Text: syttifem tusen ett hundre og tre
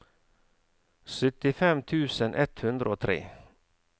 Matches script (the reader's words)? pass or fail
pass